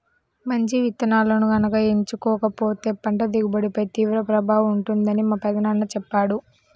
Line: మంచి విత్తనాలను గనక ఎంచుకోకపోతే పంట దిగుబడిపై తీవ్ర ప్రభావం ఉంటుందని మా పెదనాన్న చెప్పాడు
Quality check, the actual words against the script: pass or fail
pass